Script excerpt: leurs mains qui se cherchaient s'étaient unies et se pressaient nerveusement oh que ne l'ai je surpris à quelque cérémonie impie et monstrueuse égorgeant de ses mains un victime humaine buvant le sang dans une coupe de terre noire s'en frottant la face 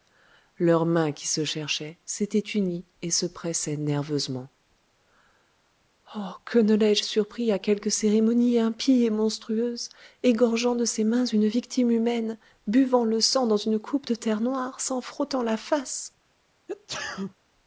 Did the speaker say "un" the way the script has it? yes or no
no